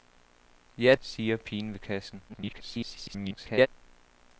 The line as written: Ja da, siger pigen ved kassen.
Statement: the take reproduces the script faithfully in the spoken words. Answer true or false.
false